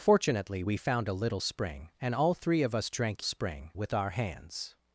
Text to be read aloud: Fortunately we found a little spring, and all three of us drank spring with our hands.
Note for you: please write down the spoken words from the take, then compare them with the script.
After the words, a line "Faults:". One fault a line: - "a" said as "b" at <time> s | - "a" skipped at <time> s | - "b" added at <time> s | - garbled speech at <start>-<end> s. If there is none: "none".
Fortunately we found a little spring, and all three of us drank spring with our hands.
Faults:
none